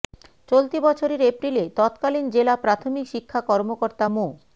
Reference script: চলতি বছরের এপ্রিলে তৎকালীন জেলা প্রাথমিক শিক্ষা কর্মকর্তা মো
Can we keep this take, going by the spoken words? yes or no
yes